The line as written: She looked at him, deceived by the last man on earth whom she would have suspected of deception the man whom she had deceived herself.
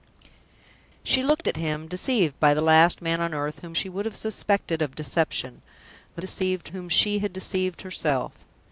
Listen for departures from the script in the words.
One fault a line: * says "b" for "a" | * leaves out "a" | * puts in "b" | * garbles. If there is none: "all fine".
* says "deceived" for "man"